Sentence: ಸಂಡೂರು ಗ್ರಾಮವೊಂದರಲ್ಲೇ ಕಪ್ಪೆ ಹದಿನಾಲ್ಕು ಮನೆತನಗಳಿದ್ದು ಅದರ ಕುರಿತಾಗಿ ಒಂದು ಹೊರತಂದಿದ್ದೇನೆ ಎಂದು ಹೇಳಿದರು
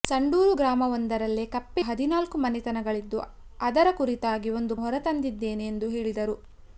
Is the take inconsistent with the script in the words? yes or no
no